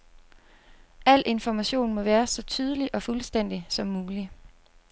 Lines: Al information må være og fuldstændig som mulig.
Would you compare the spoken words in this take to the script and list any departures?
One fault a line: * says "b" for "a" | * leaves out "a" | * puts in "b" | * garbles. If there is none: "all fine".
* puts in "så tydelig"